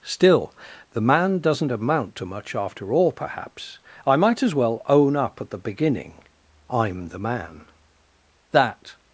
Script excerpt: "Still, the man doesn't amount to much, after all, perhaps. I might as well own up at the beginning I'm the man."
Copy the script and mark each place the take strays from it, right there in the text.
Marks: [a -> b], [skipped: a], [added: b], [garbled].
"Still, the man doesn't amount to much, after all, perhaps. I might as well own up at the beginning I'm the man." [added: That]